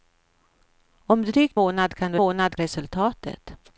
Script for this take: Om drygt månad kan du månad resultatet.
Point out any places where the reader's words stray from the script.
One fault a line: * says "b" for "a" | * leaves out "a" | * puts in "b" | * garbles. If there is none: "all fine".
all fine